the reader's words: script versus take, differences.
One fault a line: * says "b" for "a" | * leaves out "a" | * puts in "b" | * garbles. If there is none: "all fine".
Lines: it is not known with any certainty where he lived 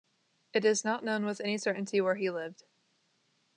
all fine